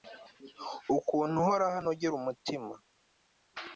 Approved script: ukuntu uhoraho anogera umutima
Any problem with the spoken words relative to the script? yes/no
no